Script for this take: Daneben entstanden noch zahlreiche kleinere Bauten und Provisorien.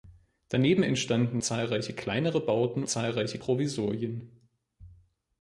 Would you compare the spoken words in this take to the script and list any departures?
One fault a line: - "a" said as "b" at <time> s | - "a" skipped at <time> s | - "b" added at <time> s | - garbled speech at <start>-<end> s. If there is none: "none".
- "noch" skipped at 1.4 s
- "und" said as "zahlreiche" at 2.9 s